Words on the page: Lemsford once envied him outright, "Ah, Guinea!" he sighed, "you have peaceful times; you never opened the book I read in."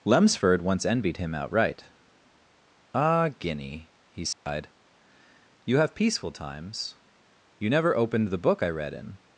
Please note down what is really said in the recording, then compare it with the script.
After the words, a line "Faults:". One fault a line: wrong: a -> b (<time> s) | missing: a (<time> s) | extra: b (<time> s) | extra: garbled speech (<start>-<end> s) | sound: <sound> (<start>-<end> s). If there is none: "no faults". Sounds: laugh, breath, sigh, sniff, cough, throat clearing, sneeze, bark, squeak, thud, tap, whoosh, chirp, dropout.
Lemsford once envied him outright, "Ah, Guinea!" he sighed, "you have peaceful times; you never opened the book I read in."
Faults:
sound: dropout (4.3-4.5 s)